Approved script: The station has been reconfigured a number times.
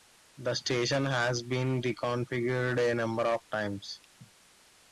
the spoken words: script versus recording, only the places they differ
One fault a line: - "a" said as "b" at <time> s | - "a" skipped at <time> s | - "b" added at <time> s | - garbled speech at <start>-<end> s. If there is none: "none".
- "of" added at 3.2 s